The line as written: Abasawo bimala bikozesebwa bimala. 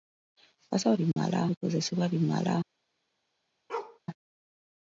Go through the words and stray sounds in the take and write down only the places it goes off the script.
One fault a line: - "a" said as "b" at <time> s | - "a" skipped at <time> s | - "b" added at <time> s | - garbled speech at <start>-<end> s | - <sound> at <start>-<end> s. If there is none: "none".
- dropout at 1.1-1.2 s
- bark at 3.7-4.0 s